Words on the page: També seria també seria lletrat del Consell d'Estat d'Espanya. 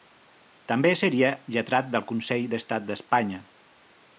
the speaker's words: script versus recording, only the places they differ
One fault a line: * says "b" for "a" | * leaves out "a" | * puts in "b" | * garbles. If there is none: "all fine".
* leaves out "també seria"